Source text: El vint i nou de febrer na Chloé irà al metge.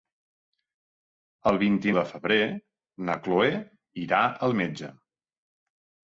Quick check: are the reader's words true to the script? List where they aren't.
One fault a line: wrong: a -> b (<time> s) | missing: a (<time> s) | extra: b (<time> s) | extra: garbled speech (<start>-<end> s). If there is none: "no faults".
missing: nou (1.9 s)